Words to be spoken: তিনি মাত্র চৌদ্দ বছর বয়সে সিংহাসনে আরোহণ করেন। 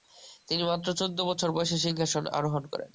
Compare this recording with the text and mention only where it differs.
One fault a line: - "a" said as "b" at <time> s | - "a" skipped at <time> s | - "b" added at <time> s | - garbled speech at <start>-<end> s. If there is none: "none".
none